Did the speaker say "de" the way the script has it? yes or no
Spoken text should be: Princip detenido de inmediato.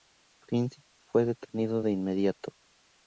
yes